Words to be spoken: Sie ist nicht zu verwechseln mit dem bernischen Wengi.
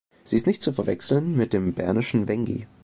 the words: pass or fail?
pass